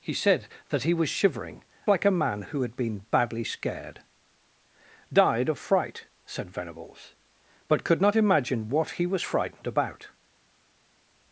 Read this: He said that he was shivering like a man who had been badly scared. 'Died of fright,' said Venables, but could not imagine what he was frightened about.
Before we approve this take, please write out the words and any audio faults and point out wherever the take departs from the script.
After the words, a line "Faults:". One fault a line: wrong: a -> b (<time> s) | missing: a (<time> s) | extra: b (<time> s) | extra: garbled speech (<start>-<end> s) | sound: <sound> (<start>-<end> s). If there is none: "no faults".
He said that he was shivering like a man who had been badly scared. 'Died of fright,' said Venables, but could not imagine what he was frightened about.
Faults:
no faults